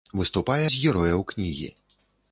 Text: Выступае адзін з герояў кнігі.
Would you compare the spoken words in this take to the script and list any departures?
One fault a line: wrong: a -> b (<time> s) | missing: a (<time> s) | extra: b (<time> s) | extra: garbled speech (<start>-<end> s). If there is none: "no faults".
missing: адзін (0.6 s)